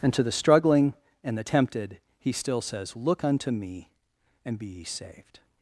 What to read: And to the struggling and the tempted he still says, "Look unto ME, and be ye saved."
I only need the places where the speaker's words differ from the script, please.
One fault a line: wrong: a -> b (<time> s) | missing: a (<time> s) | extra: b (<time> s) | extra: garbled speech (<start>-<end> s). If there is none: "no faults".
no faults